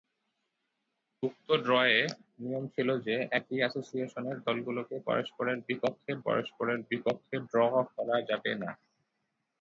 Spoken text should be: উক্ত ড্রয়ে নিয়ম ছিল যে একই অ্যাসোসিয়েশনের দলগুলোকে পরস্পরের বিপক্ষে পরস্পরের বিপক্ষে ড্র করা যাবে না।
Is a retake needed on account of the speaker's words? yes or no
no